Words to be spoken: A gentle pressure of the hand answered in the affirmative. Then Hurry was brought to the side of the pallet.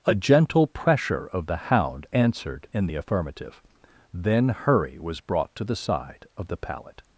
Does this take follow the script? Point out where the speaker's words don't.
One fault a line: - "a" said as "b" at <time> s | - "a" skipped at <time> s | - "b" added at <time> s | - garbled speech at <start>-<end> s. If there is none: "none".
- "hand" said as "hound" at 1.6 s